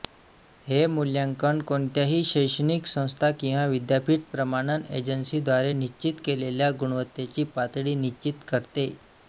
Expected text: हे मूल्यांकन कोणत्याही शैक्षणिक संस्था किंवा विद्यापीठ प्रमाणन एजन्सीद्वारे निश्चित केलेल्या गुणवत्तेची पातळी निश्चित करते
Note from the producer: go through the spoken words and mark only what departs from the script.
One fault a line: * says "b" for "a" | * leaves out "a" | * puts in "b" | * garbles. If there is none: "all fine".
all fine